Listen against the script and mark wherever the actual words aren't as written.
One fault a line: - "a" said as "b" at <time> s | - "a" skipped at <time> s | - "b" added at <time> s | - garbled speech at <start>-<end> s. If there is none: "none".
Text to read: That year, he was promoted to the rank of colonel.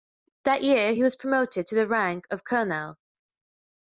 none